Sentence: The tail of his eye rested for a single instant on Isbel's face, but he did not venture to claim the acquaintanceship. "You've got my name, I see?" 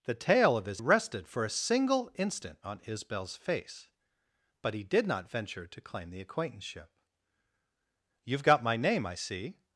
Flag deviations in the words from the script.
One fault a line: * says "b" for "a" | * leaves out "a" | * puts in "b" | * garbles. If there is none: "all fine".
* leaves out "eye"